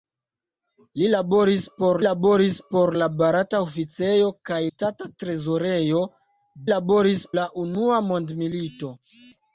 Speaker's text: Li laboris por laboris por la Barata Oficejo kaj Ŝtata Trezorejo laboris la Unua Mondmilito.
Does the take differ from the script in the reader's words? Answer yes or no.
no